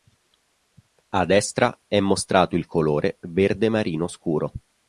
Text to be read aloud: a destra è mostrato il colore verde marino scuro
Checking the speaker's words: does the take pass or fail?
pass